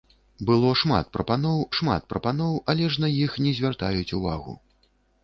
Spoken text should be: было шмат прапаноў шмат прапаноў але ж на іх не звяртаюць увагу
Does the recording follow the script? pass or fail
pass